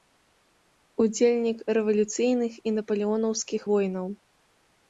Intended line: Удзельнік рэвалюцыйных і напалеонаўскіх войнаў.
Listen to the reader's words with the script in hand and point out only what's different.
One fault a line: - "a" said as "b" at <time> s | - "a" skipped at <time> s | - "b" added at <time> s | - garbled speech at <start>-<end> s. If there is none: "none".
none